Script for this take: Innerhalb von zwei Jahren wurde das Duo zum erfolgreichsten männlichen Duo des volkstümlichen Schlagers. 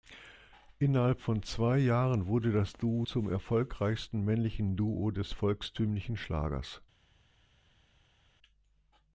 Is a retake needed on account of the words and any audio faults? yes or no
no